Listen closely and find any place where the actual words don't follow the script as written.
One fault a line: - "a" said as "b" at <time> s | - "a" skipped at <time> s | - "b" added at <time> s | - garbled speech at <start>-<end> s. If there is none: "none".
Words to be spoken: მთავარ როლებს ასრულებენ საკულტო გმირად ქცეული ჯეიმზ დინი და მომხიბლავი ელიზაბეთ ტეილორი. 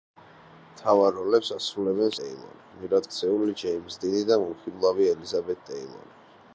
- "საკულტო" said as "ტეილორი" at 2.2 s